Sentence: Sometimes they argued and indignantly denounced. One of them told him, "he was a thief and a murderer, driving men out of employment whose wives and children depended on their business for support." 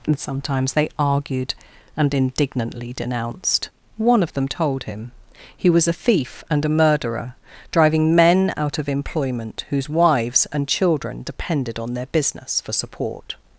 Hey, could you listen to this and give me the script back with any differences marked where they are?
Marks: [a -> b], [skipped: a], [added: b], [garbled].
[added: and] Sometimes they argued and indignantly denounced. One of them told him, "he was a thief and a murderer, driving men out of employment whose wives and children depended on their business for support."